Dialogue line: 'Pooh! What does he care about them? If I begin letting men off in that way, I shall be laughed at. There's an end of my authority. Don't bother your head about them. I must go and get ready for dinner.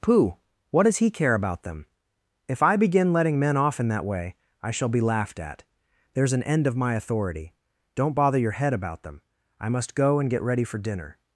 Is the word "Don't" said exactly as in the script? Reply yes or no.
yes